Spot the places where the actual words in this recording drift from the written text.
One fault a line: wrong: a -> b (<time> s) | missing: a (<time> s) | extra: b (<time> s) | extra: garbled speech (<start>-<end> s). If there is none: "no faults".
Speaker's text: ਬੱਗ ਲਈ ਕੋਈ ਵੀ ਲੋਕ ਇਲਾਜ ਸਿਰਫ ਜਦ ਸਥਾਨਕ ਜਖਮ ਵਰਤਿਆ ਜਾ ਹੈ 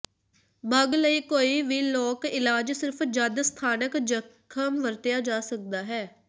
extra: ਸਕਦਾ (5.4 s)